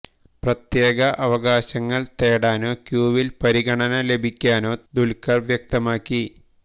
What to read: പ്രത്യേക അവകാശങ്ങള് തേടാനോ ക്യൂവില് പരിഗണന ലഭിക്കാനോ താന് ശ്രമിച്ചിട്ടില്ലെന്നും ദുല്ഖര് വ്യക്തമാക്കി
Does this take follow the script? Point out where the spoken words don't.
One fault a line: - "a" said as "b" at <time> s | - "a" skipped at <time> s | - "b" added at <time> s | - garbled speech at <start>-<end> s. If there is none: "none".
- "താന് ശ്രമിച്ചിട്ടില്ലെന്നും" skipped at 4.7 s